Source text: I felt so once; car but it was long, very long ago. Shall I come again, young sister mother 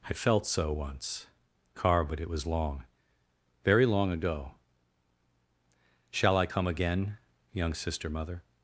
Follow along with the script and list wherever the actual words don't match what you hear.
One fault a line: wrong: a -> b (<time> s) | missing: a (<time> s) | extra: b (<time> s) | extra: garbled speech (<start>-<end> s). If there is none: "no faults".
no faults